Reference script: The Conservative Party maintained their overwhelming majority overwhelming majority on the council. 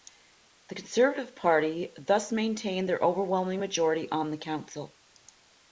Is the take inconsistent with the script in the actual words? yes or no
yes